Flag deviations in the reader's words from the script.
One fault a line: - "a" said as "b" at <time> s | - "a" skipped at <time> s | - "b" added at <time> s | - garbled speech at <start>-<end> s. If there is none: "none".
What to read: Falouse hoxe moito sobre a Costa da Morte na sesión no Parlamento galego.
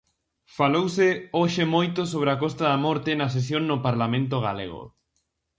none